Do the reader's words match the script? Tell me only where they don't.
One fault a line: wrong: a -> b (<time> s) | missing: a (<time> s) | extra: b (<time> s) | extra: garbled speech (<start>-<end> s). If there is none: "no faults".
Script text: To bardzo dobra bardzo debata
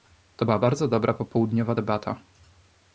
extra: była (0.4 s)
wrong: bardzo -> popołudniowa (1.1 s)